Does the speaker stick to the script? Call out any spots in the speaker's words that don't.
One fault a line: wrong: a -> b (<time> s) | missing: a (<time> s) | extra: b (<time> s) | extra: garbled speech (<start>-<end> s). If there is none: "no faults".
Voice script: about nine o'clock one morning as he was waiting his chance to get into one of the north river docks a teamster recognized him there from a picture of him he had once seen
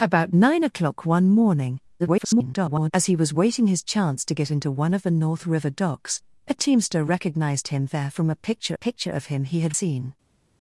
extra: garbled speech (2.0-2.9 s)
extra: picture (8.7 s)
missing: once (9.7 s)